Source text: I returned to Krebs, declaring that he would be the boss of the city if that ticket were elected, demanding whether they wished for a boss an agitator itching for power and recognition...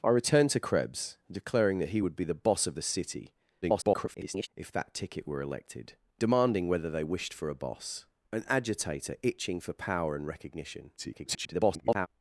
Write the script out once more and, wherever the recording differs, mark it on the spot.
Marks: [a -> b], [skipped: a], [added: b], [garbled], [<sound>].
I returned to Krebs, declaring that he would be the boss of the city [garbled] if that ticket were elected, demanding whether they wished for a boss an agitator itching for power and recognition... [garbled]